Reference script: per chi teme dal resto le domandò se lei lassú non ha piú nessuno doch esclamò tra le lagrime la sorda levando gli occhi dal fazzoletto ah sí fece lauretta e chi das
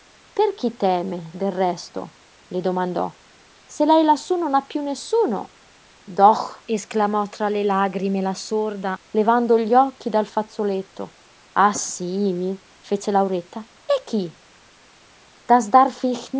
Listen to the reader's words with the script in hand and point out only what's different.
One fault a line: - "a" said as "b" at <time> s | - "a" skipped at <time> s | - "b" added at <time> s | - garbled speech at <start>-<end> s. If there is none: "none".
- "dal" said as "del" at 1.3 s